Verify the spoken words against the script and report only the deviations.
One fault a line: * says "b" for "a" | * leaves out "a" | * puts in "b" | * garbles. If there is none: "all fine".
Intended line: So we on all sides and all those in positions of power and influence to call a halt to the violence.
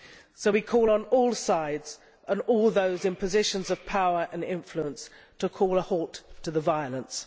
* puts in "call"